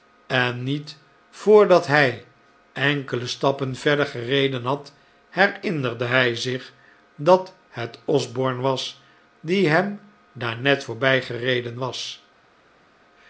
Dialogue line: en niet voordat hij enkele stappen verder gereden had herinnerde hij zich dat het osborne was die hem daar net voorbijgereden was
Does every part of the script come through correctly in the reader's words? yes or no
yes